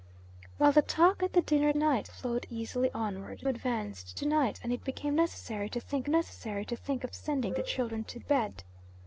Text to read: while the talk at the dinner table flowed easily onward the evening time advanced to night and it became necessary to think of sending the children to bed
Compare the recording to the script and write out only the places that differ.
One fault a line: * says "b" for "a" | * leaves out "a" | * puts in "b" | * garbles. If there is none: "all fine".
* says "night" for "table"
* leaves out "the evening time"
* puts in "necessary to think"